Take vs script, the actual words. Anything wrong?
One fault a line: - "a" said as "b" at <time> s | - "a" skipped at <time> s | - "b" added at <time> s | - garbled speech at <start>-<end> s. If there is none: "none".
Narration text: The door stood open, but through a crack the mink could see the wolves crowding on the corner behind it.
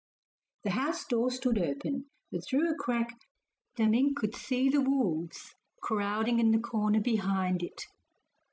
- "house" added at 0.7 s
- "on" said as "in" at 6.4 s